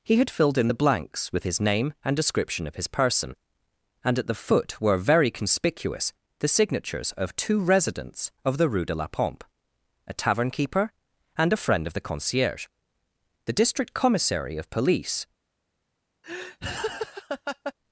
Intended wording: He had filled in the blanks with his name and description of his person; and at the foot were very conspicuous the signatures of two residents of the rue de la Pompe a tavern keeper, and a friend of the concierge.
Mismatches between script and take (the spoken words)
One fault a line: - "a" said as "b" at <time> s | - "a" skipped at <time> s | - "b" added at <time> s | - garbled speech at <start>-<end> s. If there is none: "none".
- "The district Commissary of Police" added at 13.4 s